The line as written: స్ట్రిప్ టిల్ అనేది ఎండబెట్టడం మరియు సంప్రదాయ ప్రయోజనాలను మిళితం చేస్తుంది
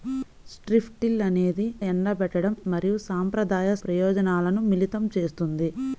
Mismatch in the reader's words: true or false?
false